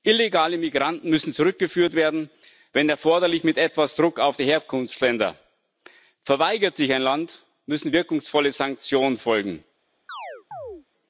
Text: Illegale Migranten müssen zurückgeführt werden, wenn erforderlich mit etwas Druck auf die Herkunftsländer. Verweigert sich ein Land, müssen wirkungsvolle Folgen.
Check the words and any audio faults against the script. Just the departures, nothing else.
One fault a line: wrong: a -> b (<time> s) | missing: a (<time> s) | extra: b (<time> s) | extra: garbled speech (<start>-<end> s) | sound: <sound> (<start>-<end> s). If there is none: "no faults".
extra: Sanktionen (8.5 s)
sound: chirp (10.1-10.9 s)